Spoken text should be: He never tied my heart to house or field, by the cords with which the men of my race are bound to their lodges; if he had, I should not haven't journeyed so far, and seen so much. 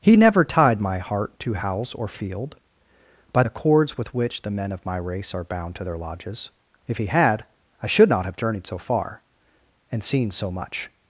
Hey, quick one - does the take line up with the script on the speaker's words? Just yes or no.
no